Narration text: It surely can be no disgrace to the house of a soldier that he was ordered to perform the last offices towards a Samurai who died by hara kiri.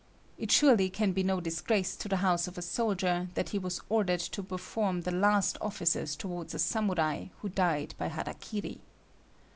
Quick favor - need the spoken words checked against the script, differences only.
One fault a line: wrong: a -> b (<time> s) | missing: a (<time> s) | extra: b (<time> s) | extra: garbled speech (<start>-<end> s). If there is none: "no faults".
no faults